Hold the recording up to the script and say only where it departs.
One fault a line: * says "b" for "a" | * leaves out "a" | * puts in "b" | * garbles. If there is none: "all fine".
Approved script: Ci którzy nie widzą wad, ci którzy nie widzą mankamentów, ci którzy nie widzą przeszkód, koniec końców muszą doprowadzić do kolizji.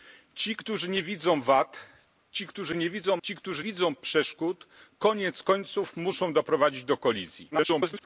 * leaves out "mankamentów"
* leaves out "nie"
* garbles